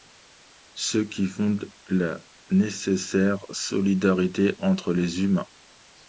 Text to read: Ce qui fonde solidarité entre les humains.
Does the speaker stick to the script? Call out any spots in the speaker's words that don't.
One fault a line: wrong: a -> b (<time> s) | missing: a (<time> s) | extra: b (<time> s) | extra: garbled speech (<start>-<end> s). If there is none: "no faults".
extra: la nécessaire (1.9 s)